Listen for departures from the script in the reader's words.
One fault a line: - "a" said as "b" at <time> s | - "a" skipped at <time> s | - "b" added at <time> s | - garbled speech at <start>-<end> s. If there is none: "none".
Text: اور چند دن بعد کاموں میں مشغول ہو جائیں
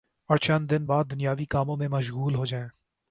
- "دنیاوی" added at 1.1 s